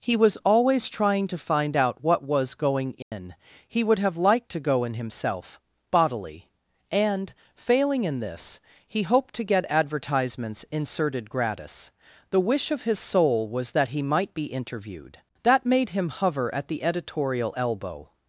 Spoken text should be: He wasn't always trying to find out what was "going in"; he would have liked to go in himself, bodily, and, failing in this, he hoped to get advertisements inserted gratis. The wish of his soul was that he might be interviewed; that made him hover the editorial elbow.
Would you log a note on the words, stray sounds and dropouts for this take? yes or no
yes